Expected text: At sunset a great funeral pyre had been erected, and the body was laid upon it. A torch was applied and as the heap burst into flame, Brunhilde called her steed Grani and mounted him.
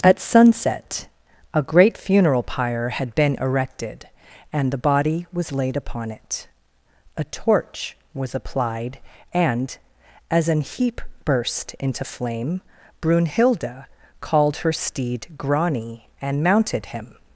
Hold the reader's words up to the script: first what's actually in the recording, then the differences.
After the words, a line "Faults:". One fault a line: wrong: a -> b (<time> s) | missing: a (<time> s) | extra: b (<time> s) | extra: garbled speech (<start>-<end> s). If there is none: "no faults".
At sunset a great funeral pyre had been erected, and the body was laid upon it. A torch was applied and as an heap burst into flame, Brunhilde called her steed Grani and mounted him.
Faults:
wrong: the -> an (10.5 s)